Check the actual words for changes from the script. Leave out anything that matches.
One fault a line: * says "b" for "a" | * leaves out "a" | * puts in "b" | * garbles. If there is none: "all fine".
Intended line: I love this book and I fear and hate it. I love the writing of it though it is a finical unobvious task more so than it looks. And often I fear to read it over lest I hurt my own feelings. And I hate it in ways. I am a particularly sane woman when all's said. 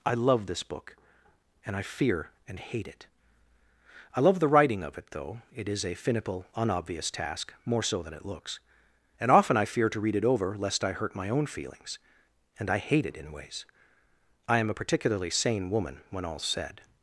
all fine